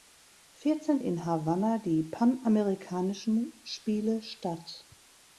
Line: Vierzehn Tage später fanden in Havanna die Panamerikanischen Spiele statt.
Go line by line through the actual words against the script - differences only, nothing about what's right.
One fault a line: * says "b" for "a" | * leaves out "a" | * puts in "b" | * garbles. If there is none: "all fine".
* leaves out "Tage später fanden"